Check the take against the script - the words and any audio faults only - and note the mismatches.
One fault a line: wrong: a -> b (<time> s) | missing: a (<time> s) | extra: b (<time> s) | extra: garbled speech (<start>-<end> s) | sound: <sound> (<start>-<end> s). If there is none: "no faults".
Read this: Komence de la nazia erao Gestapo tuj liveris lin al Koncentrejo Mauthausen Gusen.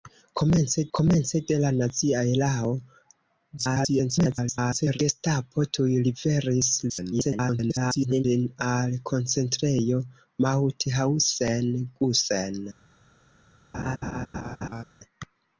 extra: komence (1.0 s)
extra: garbled speech (3.6-5.0 s)
extra: garbled speech (6.9-8.2 s)
sound: laugh (13.7-14.8 s)